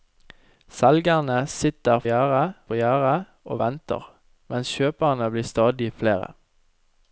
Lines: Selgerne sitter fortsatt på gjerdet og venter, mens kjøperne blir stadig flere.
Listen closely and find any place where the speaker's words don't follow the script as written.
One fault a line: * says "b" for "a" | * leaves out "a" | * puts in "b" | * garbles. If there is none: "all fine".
* says "gjerdet" for "fortsatt"